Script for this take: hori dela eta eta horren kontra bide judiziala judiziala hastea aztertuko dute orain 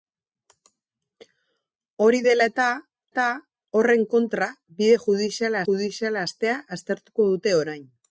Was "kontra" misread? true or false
false